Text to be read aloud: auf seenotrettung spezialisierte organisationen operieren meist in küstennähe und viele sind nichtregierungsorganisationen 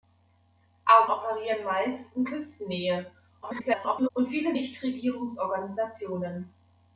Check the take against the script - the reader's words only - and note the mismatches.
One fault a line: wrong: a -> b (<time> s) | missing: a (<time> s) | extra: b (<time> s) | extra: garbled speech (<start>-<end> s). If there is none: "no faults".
missing: seenotrettung spezialisierte organisationen (1.1 s)
extra: garbled speech (3.4-4.1 s)
missing: sind (4.5 s)